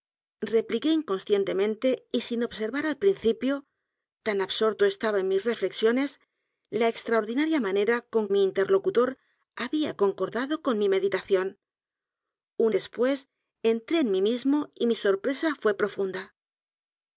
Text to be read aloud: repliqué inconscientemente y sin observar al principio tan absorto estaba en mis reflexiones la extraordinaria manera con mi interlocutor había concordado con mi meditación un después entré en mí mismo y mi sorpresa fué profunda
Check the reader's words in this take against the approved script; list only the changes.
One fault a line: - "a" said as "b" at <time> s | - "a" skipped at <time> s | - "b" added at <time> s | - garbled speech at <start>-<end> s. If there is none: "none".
none